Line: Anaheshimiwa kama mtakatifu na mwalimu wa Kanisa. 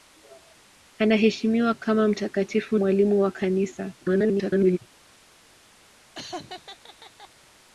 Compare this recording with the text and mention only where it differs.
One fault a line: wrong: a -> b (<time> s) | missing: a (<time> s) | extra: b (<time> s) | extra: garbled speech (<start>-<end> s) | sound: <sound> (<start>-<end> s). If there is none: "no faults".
missing: na (2.8 s)
extra: garbled speech (4.0-4.8 s)
sound: laugh (6.1-7.3 s)